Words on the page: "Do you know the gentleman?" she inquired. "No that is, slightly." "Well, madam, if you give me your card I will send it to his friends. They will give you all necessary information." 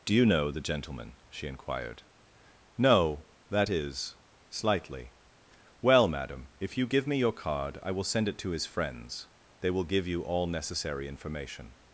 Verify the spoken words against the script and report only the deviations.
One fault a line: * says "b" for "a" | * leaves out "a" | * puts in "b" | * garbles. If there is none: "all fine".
all fine